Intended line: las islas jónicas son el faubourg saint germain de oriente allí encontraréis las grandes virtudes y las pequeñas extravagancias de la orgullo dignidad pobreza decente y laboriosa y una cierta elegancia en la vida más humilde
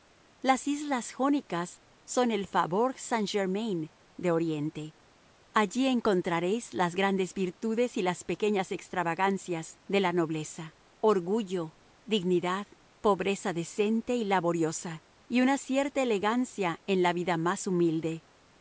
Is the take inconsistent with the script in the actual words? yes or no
yes